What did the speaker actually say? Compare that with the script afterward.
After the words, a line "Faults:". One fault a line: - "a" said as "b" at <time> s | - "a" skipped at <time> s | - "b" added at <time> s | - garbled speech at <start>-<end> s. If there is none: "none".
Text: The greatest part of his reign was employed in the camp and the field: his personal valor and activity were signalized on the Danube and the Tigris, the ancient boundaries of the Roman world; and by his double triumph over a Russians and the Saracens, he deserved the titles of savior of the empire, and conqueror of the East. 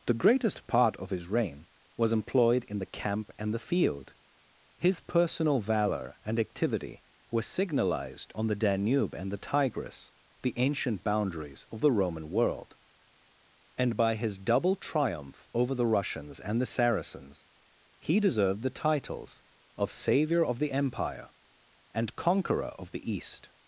The greatest part of his reign was employed in the camp and the field: his personal valor and activity were signalized on the Danube and the Tigris, the ancient boundaries of the Roman world; and by his double triumph over the Russians and the Saracens, he deserved the titles of savior of the empire, and conqueror of the East.
Faults:
- "a" said as "the" at 15.7 s